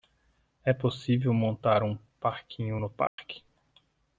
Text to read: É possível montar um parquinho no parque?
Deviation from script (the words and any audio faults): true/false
true